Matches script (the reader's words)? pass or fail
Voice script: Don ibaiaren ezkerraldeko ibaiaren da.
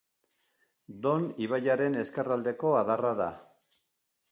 fail